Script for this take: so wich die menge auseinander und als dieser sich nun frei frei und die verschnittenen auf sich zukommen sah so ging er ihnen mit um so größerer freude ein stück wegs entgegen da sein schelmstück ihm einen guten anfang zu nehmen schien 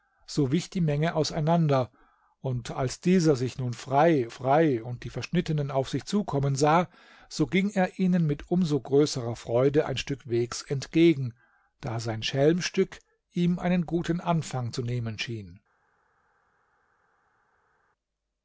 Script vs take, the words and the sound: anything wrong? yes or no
no